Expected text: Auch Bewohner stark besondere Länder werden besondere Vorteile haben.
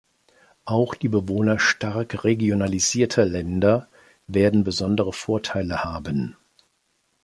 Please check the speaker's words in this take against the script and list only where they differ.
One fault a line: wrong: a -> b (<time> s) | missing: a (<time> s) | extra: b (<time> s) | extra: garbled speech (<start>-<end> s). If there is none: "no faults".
extra: die (0.9 s)
wrong: besondere -> regionalisierter (2.2 s)